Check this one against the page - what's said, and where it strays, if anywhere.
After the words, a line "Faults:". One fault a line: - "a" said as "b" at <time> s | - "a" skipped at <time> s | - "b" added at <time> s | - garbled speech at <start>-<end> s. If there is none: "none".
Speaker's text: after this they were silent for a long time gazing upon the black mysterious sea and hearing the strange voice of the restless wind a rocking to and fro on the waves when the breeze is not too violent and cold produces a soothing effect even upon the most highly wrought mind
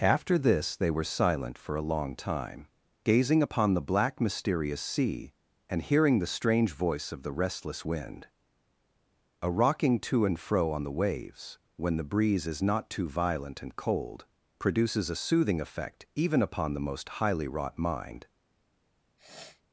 after this they were silent for a long time gazing upon the black mysterious sea and hearing the strange voice of the restless wind a rocking to and fro on the waves when the breeze is not too violent and cold produces a soothing effect even upon the most highly wrought mind
Faults:
none